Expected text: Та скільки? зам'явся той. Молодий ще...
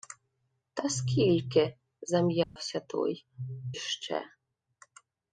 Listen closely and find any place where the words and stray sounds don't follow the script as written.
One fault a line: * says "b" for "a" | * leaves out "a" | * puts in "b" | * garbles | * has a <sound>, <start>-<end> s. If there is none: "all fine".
* has a dropout, 2.4-2.6 s
* leaves out "Молодий"